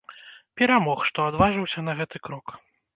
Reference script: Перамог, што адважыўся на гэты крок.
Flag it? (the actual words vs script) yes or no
no